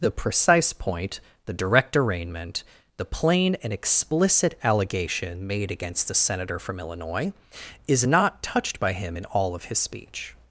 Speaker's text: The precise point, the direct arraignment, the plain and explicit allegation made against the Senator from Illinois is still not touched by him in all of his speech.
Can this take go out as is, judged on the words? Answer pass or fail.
fail